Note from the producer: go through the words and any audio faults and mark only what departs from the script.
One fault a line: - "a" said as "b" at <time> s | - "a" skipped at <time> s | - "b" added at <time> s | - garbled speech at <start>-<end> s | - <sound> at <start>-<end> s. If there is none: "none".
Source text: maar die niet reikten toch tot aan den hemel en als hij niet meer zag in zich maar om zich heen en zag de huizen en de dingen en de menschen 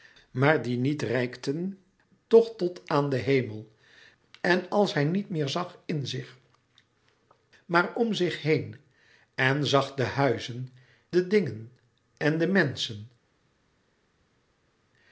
- "en" skipped at 10.7 s